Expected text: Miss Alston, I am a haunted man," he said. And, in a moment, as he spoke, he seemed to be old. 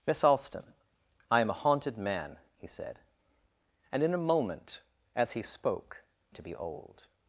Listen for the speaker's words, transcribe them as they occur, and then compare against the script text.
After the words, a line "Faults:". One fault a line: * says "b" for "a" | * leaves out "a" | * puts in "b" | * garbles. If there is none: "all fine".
Miss Alston, I am a haunted man," he said. And, in a moment, as he spoke, to be old.
Faults:
* leaves out "he seemed"